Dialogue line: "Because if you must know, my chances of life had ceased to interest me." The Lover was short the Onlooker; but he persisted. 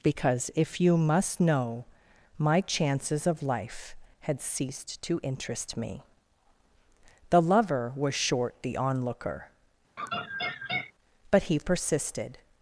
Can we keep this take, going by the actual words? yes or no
yes